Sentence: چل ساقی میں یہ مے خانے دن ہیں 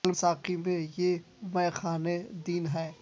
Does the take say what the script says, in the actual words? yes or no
yes